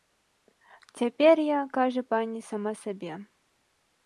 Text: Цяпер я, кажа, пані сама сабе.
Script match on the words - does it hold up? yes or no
yes